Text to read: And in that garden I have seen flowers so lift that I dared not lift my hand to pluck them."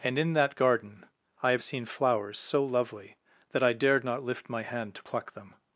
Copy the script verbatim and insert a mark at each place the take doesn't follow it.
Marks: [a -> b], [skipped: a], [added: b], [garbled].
And in that garden I have seen flowers so [lift -> lovely] that I dared not lift my hand to pluck them."